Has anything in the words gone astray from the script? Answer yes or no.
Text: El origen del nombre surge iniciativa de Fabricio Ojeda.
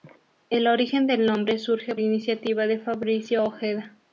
no